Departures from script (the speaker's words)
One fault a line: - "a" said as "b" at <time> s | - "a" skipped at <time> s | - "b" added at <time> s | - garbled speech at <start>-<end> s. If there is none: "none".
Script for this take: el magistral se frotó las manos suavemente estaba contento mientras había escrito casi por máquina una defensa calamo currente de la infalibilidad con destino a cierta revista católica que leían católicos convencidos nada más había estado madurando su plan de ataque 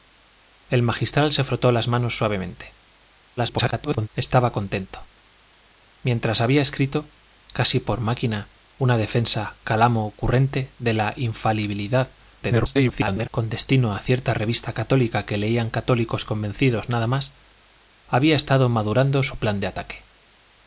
- garbled speech at 3.4-4.1 s
- garbled speech at 12.4-13.3 s